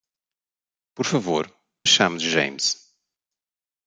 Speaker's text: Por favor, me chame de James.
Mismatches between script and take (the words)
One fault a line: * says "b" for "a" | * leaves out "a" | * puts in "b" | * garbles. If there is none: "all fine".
* leaves out "me"